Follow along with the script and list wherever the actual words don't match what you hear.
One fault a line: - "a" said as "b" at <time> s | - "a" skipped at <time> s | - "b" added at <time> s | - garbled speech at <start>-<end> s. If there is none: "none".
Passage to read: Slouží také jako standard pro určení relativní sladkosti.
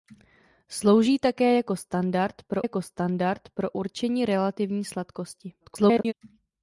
- "jako standard pro" added at 2.6 s
- garbled speech at 5.6-6.1 s